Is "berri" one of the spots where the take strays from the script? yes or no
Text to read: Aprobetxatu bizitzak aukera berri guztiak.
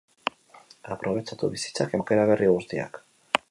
no